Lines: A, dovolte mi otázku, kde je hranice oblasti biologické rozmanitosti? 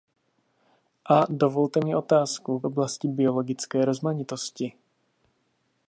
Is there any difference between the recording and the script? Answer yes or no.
yes